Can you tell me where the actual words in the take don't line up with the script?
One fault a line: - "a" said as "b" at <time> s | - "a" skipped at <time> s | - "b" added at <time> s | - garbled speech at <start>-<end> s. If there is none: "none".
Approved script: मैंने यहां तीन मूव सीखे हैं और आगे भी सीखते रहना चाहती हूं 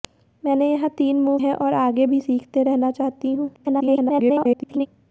- "सीखे" skipped at 1.4 s
- garbled speech at 3.5-4.9 s